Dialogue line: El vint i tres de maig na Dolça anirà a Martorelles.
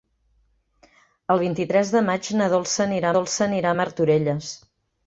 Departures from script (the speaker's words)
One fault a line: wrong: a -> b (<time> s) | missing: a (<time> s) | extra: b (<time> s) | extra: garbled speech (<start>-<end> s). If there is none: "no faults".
extra: Dolça anirà (3.2 s)